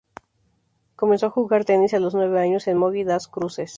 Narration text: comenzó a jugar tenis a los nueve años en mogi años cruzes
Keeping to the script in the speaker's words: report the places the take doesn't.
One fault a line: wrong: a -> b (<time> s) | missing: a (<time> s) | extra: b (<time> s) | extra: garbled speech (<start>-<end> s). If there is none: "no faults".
wrong: años -> das (3.0 s)